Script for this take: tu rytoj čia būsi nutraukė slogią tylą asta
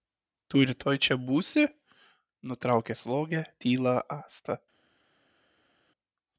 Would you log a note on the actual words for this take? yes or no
no